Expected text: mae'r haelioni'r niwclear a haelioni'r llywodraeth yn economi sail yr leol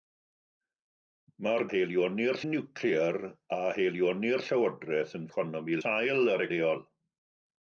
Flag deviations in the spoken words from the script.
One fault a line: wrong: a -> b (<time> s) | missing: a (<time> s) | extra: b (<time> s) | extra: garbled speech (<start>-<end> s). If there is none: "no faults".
no faults